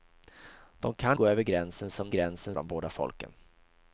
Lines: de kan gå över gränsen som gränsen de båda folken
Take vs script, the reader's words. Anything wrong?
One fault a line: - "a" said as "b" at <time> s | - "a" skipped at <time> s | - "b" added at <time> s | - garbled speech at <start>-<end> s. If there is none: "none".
none